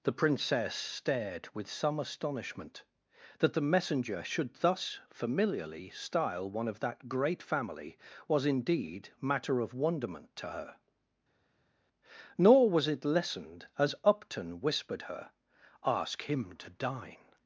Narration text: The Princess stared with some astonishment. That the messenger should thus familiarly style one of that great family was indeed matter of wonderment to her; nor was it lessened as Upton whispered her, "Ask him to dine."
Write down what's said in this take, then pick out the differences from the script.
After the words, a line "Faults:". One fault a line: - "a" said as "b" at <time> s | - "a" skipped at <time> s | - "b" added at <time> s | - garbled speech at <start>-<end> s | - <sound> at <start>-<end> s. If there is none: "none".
The Princess stared with some astonishment. That the messenger should thus familiarly style one of that great family was indeed matter of wonderment to her; nor was it lessened as Upton whispered her, "Ask him to dine."
Faults:
none